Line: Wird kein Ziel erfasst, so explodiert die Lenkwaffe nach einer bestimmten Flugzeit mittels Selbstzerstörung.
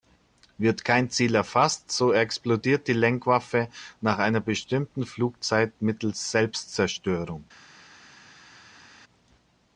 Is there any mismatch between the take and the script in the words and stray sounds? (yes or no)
no